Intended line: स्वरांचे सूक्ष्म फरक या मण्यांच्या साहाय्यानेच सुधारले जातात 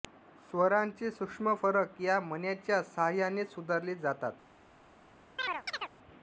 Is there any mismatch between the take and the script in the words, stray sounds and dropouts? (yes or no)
yes